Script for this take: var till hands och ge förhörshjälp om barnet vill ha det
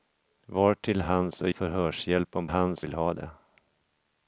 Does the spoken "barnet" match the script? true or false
false